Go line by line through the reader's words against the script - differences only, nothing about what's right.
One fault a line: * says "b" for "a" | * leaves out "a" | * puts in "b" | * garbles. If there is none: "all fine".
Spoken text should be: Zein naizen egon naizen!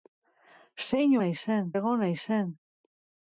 all fine